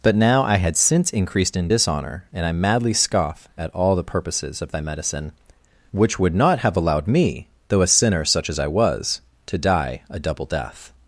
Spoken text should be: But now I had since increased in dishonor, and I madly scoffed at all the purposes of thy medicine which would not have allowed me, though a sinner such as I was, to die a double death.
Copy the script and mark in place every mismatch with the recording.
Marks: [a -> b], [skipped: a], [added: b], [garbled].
But now I had since increased in dishonor, and I madly [scoffed -> scoff] at all the purposes of thy medicine which would not have allowed me, though a sinner such as I was, to die a double death.